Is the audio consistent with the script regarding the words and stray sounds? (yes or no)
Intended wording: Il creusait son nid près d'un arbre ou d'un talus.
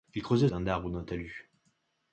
no